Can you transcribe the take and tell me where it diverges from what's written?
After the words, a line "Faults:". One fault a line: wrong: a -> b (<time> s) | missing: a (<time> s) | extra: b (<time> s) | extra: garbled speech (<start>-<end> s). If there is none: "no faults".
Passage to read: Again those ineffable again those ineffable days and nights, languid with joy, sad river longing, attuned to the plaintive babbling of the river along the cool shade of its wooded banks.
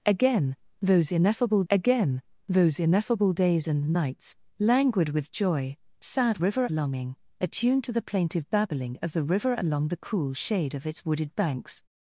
Again those ineffable again those ineffable days and nights, languid with joy, sad river longing, attuned to the plaintive babbling of the river along the cool shade of its wooded banks.
Faults:
no faults